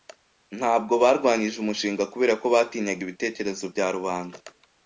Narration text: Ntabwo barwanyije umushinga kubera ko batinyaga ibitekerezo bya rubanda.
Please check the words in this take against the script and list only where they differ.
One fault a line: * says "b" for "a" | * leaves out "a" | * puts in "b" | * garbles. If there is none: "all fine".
all fine